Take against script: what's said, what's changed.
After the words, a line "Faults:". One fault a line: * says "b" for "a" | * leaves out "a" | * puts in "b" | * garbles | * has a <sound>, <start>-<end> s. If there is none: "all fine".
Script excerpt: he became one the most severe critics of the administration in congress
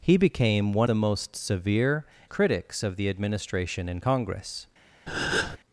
he became one the most severe critics of the administration in congress
Faults:
* has a breath, 5.1-5.6 s